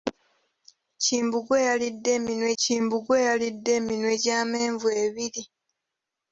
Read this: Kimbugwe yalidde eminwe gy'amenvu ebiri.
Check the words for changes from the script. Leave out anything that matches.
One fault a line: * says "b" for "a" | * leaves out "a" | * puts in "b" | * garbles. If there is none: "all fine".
* puts in "kimbugwe yalidde eminwe"